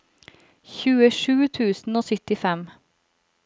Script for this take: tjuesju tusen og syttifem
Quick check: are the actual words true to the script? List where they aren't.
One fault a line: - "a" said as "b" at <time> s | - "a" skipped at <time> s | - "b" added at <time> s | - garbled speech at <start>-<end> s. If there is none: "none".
none